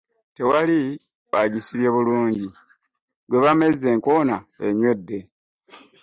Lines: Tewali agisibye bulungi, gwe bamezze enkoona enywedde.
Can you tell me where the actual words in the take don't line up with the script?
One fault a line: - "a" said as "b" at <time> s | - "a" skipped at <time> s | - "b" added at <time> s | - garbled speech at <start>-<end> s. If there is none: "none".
none